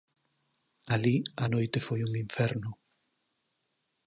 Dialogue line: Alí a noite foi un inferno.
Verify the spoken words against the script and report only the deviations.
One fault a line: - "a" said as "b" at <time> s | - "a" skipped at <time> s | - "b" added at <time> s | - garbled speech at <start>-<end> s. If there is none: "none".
none